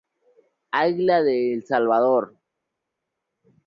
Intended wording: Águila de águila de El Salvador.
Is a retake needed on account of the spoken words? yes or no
yes